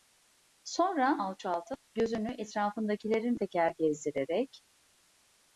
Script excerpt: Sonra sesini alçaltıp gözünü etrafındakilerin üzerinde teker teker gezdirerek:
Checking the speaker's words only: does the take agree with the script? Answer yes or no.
no